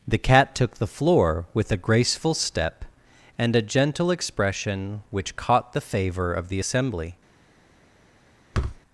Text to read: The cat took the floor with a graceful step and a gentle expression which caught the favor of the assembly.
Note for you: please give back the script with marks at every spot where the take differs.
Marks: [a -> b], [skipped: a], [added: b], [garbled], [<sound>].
The cat took the floor with a graceful step and a gentle expression which caught the favor of the assembly. [thud]